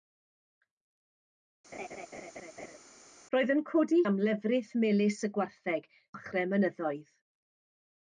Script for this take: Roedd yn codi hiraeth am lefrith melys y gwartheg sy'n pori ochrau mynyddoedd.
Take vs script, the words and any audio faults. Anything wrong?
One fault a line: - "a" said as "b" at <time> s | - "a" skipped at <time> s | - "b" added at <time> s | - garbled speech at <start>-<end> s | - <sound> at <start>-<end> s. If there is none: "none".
- laugh at 1.7-2.8 s
- "hiraeth" skipped at 4.0 s
- "sy'n pori" skipped at 5.9 s